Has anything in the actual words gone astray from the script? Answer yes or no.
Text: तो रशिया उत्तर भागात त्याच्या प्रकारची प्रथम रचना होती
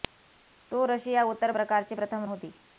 yes